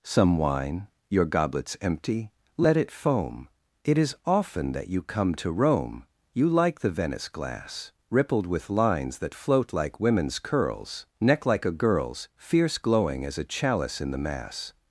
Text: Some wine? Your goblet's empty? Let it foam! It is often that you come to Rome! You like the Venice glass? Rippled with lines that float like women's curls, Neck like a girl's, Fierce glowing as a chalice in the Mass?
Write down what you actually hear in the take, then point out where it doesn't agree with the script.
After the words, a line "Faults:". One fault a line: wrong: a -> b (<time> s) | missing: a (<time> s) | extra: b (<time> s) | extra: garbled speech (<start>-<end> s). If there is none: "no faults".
Some wine? Your goblet's empty? Let it foam! It is often that you come to Rome! You like the Venice glass? Rippled with lines that float like women's curls, Neck like a girl's, Fierce glowing as a chalice in the Mass?
Faults:
no faults